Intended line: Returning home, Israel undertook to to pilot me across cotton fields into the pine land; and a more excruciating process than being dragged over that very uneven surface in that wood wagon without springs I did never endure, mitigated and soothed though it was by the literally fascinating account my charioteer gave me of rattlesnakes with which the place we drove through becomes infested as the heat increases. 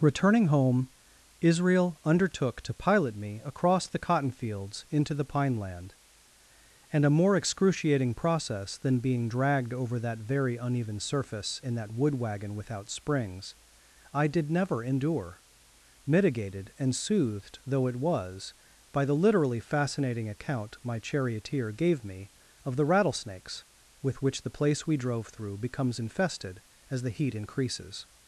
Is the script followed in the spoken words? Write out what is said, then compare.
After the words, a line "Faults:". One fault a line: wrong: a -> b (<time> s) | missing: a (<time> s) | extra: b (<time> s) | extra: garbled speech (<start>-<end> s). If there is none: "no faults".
Returning home, Israel undertook to pilot me across the cotton fields into the pine land; and a more excruciating process than being dragged over that very uneven surface in that wood wagon without springs I did never endure, mitigated and soothed though it was by the literally fascinating account my charioteer gave me of the rattlesnakes with which the place we drove through becomes infested as the heat increases.
Faults:
missing: to (2.7 s)
extra: the (3.9 s)
extra: the (22.8 s)